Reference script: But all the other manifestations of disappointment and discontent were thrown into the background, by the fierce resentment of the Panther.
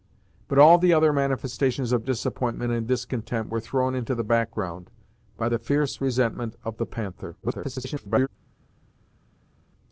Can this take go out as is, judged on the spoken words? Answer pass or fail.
fail